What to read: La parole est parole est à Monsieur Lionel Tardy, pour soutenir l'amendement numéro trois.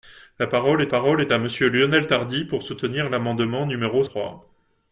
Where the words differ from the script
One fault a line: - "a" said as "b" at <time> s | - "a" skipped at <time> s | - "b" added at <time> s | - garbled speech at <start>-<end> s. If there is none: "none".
none